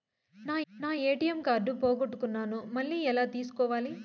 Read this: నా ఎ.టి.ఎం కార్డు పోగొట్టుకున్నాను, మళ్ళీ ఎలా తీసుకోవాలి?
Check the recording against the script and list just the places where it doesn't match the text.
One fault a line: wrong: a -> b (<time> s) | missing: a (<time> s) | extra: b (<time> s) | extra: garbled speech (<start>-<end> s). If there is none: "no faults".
extra: నా (0.7 s)